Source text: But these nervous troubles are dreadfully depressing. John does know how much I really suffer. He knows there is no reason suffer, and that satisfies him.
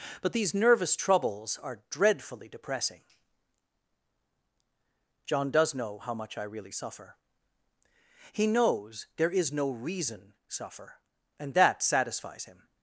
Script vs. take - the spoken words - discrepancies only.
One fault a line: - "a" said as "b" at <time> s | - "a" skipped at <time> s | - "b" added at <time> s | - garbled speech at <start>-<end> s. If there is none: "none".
none